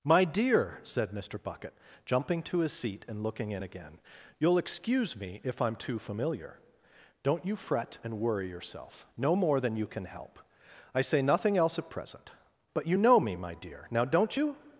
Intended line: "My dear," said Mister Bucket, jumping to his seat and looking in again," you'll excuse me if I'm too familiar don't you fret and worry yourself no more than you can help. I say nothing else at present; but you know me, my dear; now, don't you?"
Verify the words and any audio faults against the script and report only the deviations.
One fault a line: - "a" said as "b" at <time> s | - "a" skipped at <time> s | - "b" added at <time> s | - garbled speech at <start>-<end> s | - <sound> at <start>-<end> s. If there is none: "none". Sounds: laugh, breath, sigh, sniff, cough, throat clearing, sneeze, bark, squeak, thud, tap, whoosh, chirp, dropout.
none